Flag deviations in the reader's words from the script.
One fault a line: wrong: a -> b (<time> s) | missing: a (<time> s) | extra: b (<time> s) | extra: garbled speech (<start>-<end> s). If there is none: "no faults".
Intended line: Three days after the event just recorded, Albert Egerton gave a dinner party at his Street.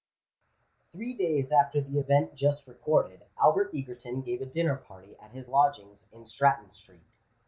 extra: lodgings in Stratton (5.5 s)